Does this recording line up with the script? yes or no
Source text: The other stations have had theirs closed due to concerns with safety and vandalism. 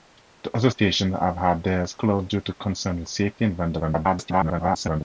no